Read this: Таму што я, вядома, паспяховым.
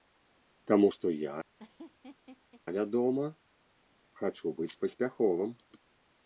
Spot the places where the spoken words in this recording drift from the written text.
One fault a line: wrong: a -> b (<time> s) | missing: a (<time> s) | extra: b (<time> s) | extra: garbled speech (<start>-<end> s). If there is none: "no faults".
extra: хачу быць (4.2 s)